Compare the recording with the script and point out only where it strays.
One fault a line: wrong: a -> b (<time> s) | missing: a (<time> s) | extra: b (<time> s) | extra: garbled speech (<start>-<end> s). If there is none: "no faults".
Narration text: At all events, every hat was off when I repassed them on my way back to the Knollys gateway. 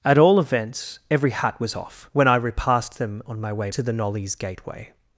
missing: back (3.7 s)